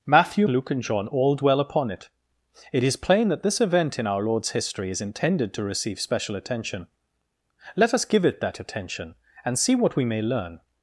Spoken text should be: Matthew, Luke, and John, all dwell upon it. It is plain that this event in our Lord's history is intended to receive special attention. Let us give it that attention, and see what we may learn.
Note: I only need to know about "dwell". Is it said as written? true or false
true